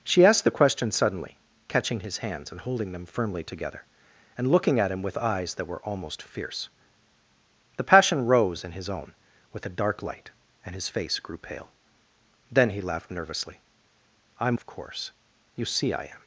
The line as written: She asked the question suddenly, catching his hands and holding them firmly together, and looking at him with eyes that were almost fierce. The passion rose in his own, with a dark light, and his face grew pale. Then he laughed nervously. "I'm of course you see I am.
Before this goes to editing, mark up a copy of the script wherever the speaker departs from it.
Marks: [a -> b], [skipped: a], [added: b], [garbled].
She asked the question suddenly, catching his hands and holding them firmly together, and looking at him with eyes that were almost fierce. The passion rose in his own, with a dark light, and his face grew pale. Then he laughed nervously. "I'm of course you see I am.